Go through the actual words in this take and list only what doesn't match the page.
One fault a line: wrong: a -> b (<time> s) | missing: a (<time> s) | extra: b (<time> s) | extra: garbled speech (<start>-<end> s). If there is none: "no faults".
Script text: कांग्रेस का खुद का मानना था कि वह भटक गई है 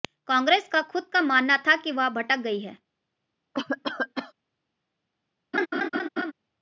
no faults